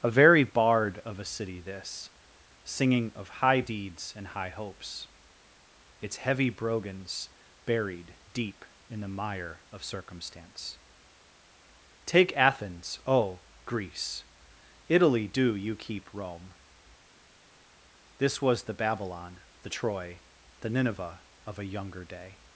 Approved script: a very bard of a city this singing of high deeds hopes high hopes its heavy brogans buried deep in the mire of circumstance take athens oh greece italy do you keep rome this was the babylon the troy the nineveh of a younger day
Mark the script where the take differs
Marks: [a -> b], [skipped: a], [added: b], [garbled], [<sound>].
a very bard of a city this singing of high deeds [hopes -> and] high hopes its heavy brogans buried deep in the mire of circumstance take athens oh greece italy do you keep rome this was the babylon the troy the nineveh of a younger day